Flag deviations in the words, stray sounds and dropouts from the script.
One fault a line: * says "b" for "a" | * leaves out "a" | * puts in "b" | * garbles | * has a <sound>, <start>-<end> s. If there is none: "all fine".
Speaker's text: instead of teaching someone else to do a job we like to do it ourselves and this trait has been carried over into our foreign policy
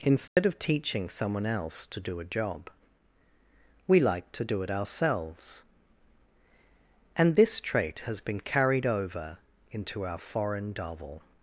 * has a dropout, 0.3-0.4 s
* says "davil" for "policy"